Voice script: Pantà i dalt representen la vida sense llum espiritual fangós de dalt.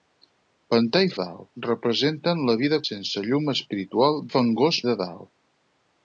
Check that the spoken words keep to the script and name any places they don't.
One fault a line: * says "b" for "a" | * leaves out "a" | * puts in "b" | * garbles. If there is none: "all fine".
all fine